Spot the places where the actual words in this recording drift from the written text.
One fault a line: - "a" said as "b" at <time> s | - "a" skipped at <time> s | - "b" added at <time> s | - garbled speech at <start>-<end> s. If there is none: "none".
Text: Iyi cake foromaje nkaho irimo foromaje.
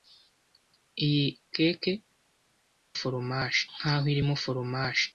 none